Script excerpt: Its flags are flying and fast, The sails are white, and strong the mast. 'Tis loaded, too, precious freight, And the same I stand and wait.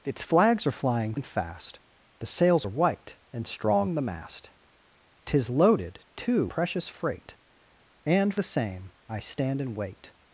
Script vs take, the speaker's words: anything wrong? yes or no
no